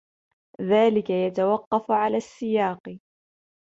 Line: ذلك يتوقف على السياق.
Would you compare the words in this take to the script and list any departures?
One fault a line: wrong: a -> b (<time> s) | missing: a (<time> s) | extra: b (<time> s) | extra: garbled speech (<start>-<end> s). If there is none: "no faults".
no faults